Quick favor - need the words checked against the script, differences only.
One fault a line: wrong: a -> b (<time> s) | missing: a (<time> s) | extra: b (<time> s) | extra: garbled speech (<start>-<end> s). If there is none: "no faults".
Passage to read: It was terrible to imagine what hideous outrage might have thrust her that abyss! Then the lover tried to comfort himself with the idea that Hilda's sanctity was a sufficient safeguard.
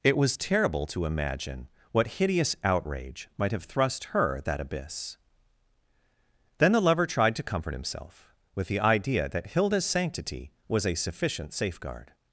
no faults